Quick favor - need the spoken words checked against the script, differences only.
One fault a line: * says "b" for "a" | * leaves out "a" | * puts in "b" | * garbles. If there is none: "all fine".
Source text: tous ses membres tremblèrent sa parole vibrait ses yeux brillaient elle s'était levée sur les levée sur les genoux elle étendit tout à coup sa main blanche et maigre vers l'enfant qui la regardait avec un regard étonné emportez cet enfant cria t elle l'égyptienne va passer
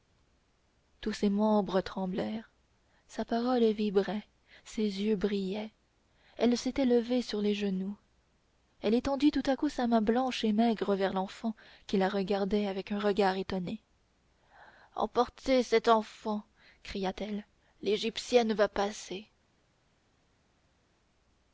* leaves out "levée sur les"